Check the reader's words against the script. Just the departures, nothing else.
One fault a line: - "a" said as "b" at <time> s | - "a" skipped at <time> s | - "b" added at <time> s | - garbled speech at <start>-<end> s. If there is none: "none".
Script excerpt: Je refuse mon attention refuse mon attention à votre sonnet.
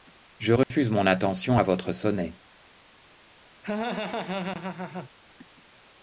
- "refuse mon attention" skipped at 1.6 s